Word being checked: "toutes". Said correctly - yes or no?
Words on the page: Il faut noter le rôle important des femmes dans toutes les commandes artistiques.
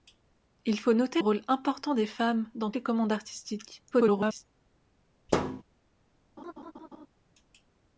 no